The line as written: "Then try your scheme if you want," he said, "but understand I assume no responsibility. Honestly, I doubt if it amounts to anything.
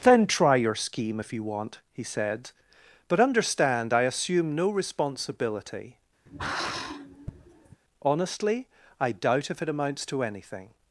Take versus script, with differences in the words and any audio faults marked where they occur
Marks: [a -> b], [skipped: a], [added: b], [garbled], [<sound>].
"Then try your scheme if you want," he said, "but understand I assume no responsibility. [sigh] Honestly, I doubt if it amounts to anything.